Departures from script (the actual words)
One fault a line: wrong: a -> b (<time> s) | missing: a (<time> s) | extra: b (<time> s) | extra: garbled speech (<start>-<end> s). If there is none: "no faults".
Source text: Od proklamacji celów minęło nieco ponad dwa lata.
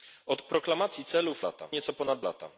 wrong: minęło -> lata (1.4 s)
missing: dwa (2.2 s)